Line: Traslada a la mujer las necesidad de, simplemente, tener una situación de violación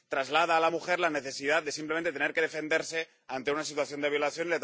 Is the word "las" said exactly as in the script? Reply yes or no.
no